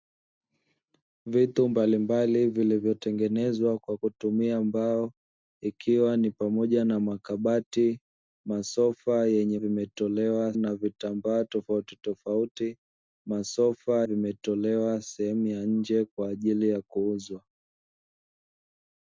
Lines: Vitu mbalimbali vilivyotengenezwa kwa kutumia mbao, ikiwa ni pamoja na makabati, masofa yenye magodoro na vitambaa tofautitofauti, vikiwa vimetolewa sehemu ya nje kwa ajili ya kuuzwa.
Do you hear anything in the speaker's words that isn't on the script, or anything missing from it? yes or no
yes